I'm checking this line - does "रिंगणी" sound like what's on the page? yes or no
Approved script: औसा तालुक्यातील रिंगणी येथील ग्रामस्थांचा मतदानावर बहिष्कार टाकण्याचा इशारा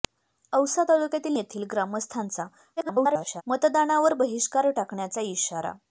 no